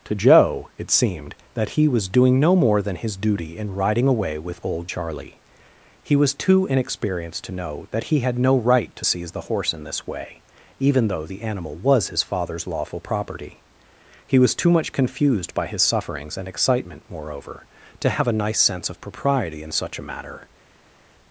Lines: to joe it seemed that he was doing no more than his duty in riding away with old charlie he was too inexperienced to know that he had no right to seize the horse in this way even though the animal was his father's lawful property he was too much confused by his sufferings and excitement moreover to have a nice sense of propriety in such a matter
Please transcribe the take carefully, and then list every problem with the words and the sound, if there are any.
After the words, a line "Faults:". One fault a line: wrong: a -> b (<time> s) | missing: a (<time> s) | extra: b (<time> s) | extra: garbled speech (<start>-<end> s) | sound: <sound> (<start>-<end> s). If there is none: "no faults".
to joe it seemed that he was doing no more than his duty in riding away with old charlie he was too inexperienced to know that he had no right to seize the horse in this way even though the animal was his father's lawful property he was too much confused by his sufferings and excitement moreover to have a nice sense of propriety in such a matter
Faults:
no faults